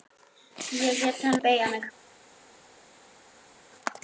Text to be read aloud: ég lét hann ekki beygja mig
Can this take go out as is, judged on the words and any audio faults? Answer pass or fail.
fail